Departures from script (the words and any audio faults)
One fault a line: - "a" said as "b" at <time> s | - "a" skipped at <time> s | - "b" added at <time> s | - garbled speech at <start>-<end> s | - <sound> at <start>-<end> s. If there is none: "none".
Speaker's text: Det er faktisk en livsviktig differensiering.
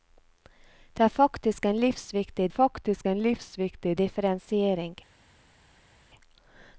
- "faktisk en livsviktig" added at 2.5 s